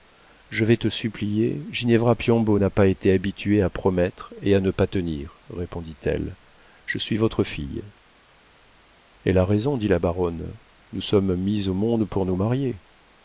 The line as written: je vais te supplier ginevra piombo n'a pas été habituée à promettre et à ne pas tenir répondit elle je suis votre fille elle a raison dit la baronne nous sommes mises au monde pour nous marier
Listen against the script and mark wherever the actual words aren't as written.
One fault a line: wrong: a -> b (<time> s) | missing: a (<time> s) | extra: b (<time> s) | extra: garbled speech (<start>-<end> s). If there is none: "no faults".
no faults